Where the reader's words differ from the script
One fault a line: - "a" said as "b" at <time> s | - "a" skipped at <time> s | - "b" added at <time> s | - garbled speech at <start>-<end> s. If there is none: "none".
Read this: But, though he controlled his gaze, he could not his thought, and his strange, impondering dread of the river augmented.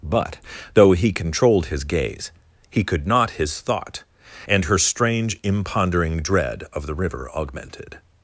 - "his" said as "her" at 4.7 s